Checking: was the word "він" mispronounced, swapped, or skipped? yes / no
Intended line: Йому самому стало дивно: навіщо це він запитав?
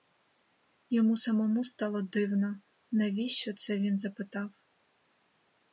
no